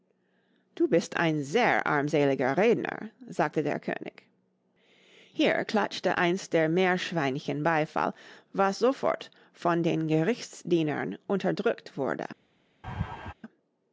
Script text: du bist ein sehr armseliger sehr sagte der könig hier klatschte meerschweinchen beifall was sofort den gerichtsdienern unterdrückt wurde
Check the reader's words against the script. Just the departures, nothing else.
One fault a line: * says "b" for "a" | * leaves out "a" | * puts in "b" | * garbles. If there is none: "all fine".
* says "redner" for "sehr"
* puts in "eins der"
* puts in "von"